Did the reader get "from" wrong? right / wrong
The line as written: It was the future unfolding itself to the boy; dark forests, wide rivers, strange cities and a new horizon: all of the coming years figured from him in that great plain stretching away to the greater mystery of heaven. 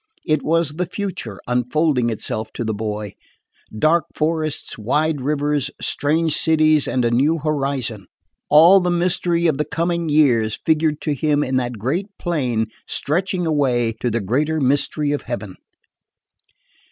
wrong